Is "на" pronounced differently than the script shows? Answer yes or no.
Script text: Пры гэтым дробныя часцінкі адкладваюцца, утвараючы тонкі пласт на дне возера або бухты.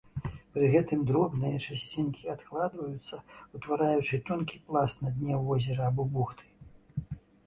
no